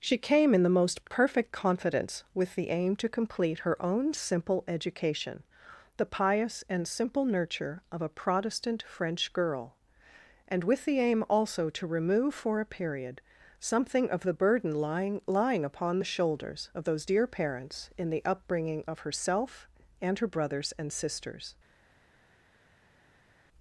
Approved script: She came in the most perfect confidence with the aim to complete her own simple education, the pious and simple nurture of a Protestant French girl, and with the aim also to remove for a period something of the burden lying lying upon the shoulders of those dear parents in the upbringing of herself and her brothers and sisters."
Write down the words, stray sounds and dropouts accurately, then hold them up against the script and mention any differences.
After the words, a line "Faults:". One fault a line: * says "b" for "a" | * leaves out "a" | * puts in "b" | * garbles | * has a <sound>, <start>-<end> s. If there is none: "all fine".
She came in the most perfect confidence with the aim to complete her own simple education, the pious and simple nurture of a Protestant French girl, and with the aim also to remove for a period something of the burden lying lying upon the shoulders of those dear parents in the upbringing of herself and her brothers and sisters."
Faults:
all fine